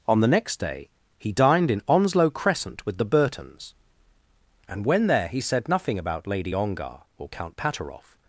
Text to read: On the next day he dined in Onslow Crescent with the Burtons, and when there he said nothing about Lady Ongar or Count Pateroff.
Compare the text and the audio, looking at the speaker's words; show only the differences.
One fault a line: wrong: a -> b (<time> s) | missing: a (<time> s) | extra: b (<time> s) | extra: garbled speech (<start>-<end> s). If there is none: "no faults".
no faults